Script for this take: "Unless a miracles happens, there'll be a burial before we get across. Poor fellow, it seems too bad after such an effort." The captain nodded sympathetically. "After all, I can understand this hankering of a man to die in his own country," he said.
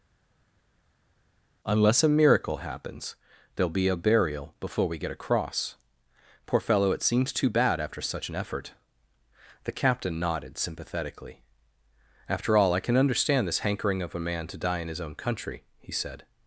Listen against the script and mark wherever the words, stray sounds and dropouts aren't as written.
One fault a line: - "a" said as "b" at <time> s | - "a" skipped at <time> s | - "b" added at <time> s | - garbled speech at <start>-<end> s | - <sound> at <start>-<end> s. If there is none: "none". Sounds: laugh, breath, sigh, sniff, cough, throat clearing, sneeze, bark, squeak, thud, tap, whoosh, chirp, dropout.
- "miracles" said as "miracle" at 2.1 s